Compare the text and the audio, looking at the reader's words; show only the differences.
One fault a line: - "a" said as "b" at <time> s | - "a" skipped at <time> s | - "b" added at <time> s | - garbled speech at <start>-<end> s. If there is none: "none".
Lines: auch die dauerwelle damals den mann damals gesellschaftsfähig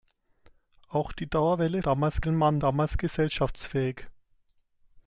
none